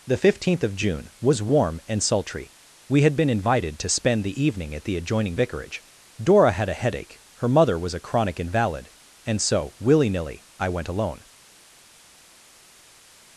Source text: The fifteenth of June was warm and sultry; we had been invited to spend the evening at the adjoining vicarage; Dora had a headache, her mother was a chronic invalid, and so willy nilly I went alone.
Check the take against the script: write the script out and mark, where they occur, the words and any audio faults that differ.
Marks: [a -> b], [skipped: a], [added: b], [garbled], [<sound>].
The fifteenth of June was warm and sultry; we had been invited to spend the evening at the adjoining vicarage; Dora had a headache, her mother was a chronic invalid, and so willy nilly I went alone.